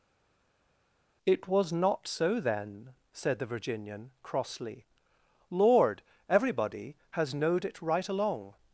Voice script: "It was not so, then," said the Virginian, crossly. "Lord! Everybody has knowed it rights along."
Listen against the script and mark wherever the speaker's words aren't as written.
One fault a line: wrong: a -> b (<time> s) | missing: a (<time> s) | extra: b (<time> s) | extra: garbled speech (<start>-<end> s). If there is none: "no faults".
wrong: rights -> right (7.8 s)